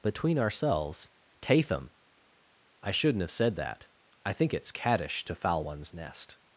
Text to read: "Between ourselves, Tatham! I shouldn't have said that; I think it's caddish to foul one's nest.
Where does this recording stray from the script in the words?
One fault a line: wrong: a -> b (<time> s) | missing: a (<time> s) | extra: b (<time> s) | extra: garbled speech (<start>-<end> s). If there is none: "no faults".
no faults